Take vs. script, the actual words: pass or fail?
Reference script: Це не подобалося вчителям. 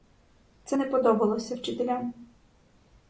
pass